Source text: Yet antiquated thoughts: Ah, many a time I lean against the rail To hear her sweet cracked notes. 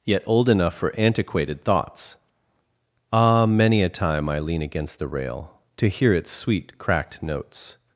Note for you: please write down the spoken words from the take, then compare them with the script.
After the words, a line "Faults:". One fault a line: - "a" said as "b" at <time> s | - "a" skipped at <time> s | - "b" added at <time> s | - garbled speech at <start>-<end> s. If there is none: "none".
Yet old enough for antiquated thoughts: Ah, many a time I lean against the rail To hear its sweet cracked notes.
Faults:
- "old enough for" added at 0.2 s
- "her" said as "its" at 6.1 s